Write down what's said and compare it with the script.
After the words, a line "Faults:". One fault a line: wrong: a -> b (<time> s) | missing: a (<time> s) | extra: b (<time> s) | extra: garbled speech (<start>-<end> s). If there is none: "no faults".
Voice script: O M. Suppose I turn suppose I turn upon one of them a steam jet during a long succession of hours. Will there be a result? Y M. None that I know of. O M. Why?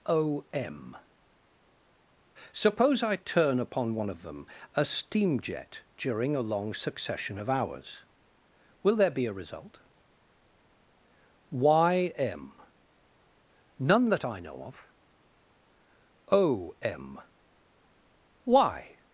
O M. Suppose I turn upon one of them a steam jet during a long succession of hours. Will there be a result? Y M. None that I know of. O M. Why?
Faults:
missing: suppose I turn (3.6 s)